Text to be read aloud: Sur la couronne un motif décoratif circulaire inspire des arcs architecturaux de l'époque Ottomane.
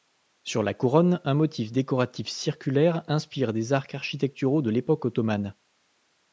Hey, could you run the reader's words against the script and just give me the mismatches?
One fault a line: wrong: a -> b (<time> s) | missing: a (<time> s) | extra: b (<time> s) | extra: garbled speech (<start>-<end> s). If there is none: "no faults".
no faults